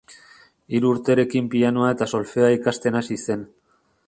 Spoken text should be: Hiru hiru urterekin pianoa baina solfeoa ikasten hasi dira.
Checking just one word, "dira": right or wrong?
wrong